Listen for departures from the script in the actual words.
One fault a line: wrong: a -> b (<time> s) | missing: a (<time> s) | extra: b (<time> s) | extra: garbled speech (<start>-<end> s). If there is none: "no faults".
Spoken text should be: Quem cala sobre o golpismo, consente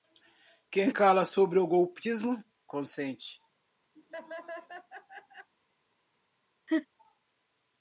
no faults